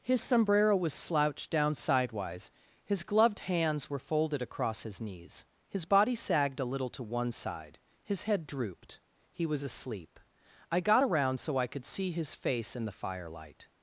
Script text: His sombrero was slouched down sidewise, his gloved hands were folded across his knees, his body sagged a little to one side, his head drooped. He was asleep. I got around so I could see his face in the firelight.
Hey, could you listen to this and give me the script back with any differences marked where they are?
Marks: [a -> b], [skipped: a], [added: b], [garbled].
His sombrero was slouched down sidewise, his gloved hands were folded across his knees, his body sagged a little to one side, his head drooped. He was asleep. I got around so I could see his face in the firelight.